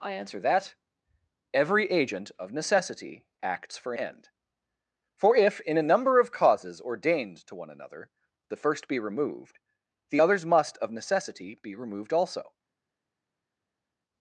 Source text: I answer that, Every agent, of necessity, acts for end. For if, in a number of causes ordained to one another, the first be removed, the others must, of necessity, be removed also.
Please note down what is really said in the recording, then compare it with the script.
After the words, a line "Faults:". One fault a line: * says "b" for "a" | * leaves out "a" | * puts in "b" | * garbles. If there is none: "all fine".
I answer that, Every agent, of necessity, acts for end. For if, in a number of causes ordained to one another, the first be removed, the others must, of necessity, be removed also.
Faults:
all fine